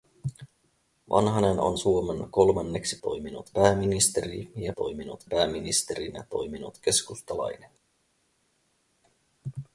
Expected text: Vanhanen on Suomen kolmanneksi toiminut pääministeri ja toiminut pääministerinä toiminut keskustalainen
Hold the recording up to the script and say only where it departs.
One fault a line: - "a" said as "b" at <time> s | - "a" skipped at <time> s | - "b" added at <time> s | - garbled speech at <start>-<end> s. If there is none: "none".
none